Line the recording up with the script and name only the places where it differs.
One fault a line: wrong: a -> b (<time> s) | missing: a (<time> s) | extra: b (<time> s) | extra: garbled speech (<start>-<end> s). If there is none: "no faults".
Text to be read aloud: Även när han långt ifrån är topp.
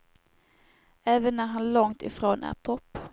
no faults